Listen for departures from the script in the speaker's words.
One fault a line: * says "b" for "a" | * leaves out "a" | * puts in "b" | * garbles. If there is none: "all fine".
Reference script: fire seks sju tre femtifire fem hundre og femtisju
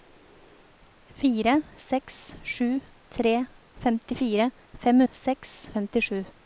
* says "seks" for "hundre"